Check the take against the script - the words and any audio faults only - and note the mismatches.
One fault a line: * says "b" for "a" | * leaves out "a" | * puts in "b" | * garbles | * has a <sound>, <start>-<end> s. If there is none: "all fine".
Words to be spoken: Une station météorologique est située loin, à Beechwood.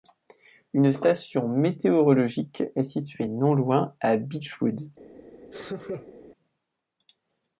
* puts in "non"
* has a laugh, 5.5-6.2 s